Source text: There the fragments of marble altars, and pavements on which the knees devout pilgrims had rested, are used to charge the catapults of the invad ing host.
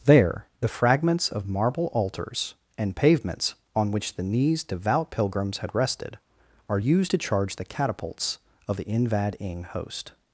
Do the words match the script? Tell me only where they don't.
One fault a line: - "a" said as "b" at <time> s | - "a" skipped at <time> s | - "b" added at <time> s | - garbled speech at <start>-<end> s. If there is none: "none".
none